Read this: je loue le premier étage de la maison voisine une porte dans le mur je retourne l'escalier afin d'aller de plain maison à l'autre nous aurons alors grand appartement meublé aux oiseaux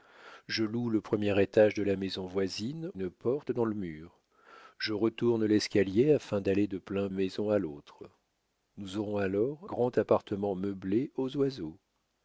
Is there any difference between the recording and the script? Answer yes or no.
no